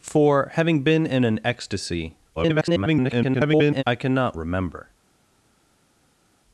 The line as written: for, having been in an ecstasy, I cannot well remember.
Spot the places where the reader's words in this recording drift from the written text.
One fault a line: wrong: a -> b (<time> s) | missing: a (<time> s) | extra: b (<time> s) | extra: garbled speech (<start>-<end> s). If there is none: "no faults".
extra: garbled speech (2.4-3.8 s)
missing: well (4.4 s)